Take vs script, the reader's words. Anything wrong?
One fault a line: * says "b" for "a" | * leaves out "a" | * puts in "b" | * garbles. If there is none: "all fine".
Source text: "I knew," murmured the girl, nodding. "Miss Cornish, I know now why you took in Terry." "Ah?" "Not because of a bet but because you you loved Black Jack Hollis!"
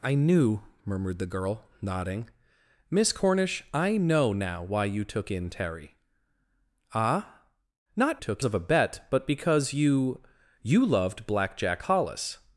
* says "took" for "because"